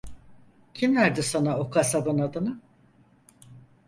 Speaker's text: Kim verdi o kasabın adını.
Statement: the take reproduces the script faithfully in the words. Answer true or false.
false